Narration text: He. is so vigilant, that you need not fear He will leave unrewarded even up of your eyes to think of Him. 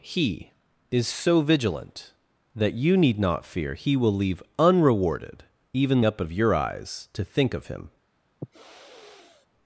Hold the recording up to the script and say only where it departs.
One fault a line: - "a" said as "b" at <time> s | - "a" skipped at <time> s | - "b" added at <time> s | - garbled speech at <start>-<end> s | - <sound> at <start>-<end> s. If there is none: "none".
- sniff at 8.4-9.5 s